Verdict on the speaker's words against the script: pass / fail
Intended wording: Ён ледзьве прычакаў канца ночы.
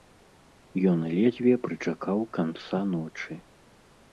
pass